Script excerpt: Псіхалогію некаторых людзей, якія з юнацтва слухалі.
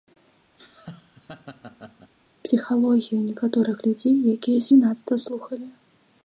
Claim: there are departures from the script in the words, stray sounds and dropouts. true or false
true